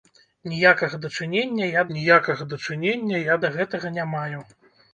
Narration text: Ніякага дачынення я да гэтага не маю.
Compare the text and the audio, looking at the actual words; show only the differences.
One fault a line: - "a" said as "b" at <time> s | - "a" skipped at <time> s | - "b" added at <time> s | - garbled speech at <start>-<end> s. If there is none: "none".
- "ніякага дачынення я" added at 2.0 s